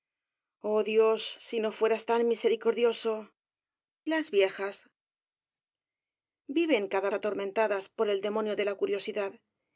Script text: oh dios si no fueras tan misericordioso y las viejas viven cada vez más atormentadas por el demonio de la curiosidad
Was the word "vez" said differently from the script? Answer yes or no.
yes